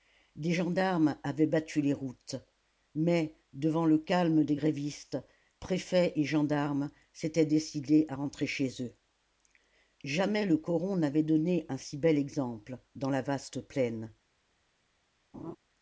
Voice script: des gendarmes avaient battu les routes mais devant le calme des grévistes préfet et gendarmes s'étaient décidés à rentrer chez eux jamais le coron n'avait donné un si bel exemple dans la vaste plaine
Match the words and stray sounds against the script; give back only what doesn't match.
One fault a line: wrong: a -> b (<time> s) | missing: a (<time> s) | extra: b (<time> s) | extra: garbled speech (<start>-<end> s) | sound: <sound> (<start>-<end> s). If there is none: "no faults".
sound: laugh (15.3-15.6 s)